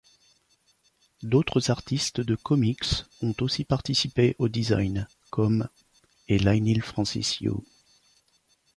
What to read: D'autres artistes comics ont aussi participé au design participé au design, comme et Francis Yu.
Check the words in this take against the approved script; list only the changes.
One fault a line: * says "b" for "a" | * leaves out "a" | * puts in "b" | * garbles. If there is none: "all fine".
* puts in "de"
* leaves out "participé au design"
* puts in "Leinil"